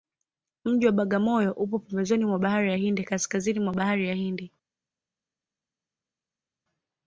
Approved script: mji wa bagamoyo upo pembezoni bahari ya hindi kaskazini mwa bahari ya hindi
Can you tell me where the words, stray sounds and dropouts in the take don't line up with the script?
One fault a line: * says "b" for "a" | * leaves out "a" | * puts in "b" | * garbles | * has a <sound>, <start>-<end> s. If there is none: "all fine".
* puts in "mwa"